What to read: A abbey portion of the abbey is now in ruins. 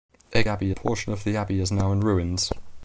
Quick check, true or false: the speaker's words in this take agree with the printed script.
true